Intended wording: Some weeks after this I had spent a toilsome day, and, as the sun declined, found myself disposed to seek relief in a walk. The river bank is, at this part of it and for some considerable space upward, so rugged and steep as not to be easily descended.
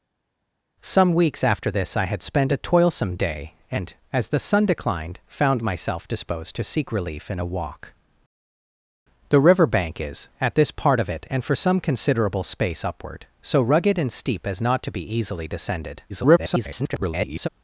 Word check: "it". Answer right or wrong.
right